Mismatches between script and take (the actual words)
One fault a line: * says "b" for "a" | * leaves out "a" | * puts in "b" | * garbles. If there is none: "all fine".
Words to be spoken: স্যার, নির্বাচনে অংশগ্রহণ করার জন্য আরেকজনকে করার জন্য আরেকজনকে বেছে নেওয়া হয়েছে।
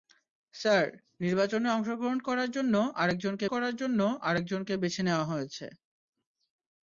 all fine